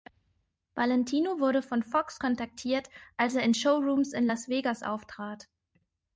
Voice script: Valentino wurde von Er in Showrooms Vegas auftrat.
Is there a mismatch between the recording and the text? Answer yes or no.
yes